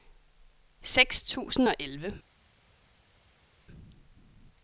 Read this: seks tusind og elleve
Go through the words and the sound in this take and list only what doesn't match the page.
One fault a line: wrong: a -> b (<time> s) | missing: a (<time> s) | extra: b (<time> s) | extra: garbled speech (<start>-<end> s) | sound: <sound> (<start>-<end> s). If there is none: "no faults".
no faults